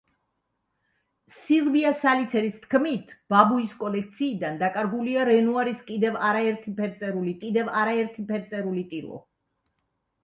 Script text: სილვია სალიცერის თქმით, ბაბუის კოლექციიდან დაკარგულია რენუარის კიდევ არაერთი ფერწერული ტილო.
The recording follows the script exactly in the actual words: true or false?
false